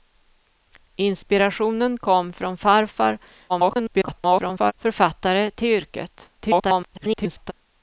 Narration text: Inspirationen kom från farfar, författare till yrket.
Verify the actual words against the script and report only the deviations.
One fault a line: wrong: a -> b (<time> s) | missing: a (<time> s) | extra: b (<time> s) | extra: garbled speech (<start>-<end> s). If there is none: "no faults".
extra: garbled speech (3.5-4.7 s)
extra: garbled speech (6.4-7.5 s)